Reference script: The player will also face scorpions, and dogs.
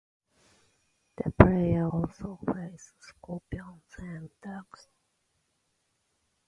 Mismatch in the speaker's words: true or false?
true